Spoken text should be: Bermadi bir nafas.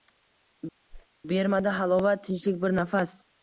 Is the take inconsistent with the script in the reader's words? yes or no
yes